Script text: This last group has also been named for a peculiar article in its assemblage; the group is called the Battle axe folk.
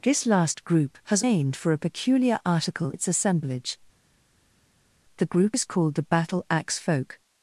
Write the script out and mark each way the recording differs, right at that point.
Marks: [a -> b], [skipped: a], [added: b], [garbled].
This last group has [skipped: also been] named for a peculiar article [skipped: in] its assemblage; the group is called the Battle axe folk.